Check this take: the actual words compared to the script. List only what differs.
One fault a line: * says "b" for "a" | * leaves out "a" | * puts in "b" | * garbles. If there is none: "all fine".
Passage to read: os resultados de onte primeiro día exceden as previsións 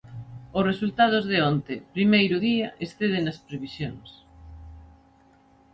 all fine